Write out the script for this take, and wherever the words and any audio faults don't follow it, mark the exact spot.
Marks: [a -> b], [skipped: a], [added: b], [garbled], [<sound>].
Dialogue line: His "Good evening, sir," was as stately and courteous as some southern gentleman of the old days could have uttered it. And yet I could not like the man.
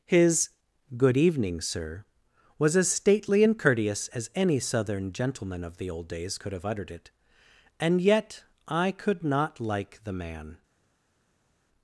His "Good evening, sir," was as stately and courteous as [some -> any] southern gentleman of the old days could have uttered it. And yet I could not like the man.